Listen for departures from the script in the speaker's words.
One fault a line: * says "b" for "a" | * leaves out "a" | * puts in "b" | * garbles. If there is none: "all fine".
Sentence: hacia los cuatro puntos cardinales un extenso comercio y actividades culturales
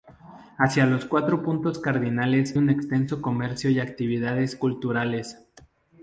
all fine